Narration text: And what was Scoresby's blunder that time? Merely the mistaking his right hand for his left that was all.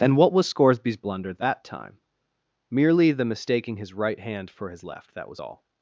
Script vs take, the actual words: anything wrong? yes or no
no